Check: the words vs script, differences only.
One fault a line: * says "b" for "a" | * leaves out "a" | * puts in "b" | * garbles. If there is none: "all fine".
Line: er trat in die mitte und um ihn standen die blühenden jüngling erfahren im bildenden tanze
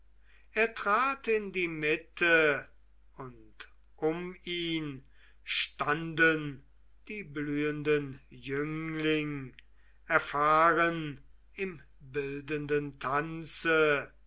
all fine